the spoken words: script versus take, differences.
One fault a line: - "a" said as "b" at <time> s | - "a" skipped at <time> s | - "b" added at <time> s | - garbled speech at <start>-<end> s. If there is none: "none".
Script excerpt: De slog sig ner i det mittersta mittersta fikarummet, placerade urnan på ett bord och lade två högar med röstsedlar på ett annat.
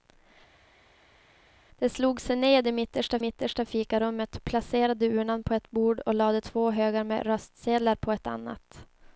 none